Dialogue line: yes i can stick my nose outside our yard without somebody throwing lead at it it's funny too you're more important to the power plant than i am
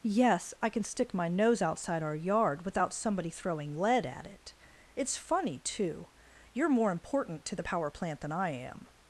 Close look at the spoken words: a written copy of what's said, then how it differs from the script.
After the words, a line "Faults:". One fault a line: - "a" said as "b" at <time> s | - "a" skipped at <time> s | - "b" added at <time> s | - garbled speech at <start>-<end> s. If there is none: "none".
yes i can stick my nose outside our yard without somebody throwing lead at it it's funny too you're more important to the power plant than i am
Faults:
none